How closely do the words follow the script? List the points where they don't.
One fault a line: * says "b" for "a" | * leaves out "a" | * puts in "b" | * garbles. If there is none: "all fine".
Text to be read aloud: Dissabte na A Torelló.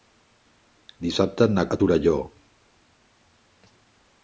all fine